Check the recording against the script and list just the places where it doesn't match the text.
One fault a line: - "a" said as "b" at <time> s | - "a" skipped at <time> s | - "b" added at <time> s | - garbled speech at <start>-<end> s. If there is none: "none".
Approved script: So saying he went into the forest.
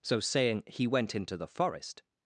none